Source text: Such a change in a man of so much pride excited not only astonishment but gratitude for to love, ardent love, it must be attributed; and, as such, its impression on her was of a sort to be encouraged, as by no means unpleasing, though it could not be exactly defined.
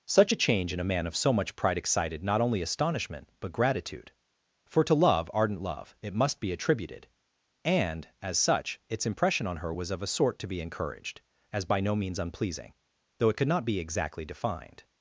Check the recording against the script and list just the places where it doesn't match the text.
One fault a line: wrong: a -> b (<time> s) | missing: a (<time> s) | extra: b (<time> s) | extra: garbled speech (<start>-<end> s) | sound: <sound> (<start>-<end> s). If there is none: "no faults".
no faults